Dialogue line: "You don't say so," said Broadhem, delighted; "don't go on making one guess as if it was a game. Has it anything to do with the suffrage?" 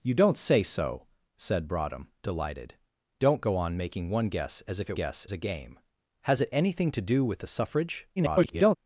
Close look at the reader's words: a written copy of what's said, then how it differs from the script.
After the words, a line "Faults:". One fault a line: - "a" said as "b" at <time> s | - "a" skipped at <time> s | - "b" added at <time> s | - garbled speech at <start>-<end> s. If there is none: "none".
"You don't say so," said Broadhem, delighted; "don't go on making one guess as if it guess a game. Has it anything to do with the suffrage?" [garbled]
Faults:
- "was" said as "guess" at 4.9 s
- garbled speech at 8.2-8.8 s